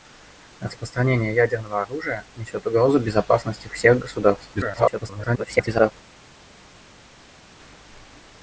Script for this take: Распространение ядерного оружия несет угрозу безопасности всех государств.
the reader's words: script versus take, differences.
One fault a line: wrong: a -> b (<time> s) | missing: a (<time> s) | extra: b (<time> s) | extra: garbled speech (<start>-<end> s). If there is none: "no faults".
extra: garbled speech (4.5-5.9 s)